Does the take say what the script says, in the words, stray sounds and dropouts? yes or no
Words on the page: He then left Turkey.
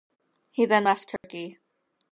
no